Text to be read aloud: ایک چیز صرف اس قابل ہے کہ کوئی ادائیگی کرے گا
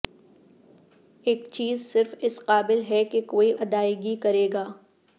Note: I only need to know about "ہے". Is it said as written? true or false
true